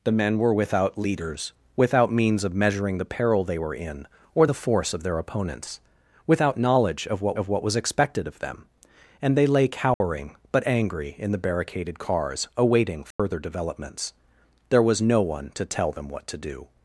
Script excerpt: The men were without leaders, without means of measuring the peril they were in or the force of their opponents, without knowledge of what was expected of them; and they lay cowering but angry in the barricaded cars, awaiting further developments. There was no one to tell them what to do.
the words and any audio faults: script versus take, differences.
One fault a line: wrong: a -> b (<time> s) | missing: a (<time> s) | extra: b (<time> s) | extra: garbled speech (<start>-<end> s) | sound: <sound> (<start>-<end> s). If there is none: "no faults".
extra: of what (7.3 s)
sound: dropout (9.9-10.0 s)
sound: dropout (13.1-13.2 s)